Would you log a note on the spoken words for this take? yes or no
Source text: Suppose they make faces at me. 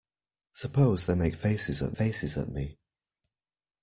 yes